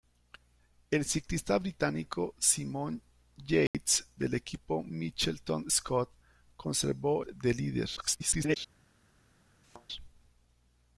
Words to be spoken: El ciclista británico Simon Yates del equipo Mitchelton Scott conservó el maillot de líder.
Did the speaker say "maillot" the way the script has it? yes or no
no